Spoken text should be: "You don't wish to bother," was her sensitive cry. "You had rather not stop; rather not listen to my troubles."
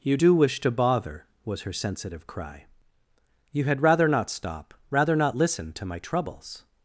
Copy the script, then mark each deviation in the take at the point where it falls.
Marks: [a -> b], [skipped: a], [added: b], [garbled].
"You [don't -> do] wish to bother," was her sensitive cry. "You had rather not stop; rather not listen to my troubles."